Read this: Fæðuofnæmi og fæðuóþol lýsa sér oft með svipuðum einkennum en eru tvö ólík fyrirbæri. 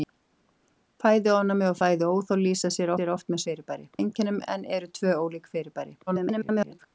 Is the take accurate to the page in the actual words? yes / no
no